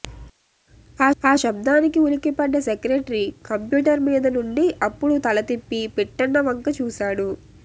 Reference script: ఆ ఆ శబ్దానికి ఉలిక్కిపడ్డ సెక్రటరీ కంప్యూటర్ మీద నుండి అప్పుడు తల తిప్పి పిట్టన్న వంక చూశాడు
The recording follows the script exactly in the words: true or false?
true